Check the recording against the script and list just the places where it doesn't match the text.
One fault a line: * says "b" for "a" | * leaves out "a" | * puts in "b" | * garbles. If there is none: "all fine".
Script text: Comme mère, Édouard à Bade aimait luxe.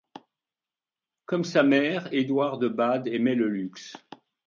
* puts in "sa"
* says "de" for "à"
* puts in "le"